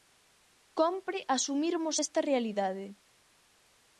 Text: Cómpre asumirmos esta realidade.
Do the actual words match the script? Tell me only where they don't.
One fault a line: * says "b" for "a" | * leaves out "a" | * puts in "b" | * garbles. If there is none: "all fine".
all fine